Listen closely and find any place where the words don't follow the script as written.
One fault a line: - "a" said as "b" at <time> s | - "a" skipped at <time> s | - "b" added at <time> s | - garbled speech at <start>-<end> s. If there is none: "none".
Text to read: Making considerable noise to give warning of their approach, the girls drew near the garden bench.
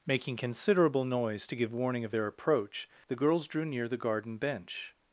none